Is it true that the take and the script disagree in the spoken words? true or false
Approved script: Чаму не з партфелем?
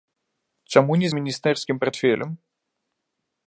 true